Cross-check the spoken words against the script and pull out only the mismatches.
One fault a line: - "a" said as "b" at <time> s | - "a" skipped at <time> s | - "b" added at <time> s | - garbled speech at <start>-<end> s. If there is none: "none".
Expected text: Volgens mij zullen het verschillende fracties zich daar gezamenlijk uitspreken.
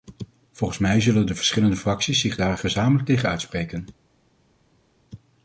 - "het" said as "de" at 1.2 s
- "tegen" added at 3.1 s